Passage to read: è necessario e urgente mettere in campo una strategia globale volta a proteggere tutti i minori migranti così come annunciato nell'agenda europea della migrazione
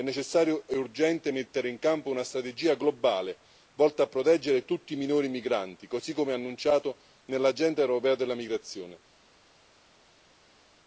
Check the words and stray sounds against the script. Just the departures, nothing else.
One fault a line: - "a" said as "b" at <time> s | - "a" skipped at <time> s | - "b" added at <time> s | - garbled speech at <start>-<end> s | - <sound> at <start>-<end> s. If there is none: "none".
none